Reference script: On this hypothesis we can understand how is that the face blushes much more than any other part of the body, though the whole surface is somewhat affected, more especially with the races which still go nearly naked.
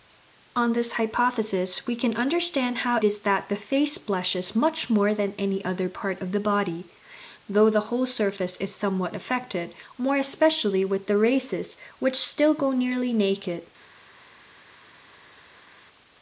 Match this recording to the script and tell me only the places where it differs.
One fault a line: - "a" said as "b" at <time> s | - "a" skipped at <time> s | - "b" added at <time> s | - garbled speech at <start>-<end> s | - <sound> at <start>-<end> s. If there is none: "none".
none